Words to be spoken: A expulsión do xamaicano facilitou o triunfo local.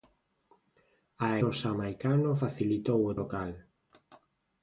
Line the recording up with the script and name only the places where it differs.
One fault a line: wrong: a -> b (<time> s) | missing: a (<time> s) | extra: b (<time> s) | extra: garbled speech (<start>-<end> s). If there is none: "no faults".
missing: expulsión (1.3 s)
missing: triunfo (3.2 s)